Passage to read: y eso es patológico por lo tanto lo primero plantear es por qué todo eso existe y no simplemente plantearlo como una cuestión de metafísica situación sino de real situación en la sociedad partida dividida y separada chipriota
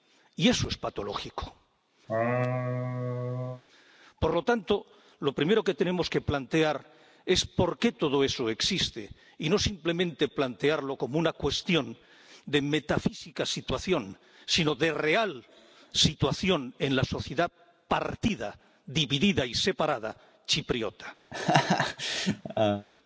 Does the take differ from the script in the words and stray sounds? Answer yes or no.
yes